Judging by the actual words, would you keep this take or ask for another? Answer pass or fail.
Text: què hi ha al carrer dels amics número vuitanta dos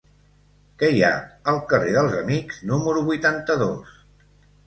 pass